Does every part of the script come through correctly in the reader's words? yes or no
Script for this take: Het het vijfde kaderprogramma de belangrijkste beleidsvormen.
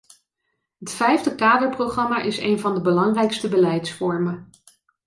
no